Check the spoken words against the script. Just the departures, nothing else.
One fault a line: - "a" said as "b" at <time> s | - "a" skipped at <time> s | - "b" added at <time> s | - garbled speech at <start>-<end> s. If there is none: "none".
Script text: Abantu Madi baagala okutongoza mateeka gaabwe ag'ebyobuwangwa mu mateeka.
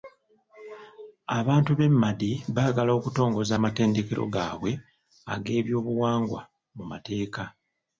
- "b'e" added at 1.8 s
- "mateeka" said as "amatendekero" at 3.5 s